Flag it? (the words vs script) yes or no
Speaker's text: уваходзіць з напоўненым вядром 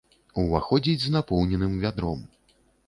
no